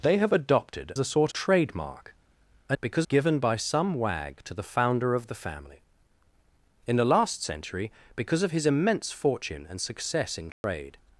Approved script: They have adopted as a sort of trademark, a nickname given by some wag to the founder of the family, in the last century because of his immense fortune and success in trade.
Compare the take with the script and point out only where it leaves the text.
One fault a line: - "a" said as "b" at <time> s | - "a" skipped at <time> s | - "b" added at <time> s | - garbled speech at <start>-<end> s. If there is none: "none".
- "as" skipped at 0.9 s
- "of" skipped at 1.3 s
- "nickname" said as "because" at 2.8 s